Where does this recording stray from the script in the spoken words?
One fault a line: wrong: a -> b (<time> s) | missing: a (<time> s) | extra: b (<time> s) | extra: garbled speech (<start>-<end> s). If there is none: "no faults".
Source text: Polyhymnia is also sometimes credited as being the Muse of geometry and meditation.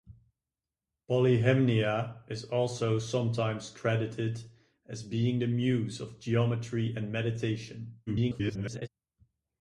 extra: garbled speech (8.1-8.9 s)